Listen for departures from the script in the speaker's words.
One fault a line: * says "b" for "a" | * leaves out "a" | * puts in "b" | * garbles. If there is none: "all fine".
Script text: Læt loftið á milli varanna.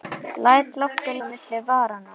all fine